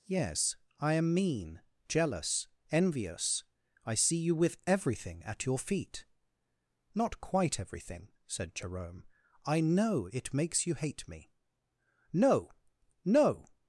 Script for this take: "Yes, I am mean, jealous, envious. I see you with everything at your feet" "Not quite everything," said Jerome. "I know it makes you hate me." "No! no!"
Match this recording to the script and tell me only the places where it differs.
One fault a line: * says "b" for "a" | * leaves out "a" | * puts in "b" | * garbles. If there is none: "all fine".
all fine